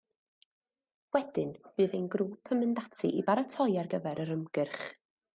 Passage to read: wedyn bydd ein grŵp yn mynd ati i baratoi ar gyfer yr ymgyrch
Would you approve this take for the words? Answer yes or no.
yes